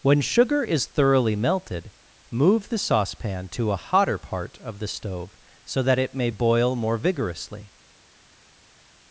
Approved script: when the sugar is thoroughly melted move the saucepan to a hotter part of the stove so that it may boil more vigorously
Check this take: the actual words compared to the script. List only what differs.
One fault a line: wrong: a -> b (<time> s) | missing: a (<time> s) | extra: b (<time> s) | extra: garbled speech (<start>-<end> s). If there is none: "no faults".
missing: the (0.2 s)